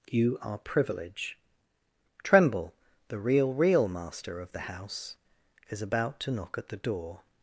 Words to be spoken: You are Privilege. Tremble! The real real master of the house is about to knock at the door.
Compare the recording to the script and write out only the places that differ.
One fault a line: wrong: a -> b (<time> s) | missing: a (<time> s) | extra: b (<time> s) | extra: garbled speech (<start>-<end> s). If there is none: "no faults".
no faults